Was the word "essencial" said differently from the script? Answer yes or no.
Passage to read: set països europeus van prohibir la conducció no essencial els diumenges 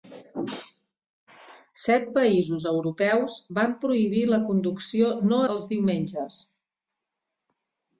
yes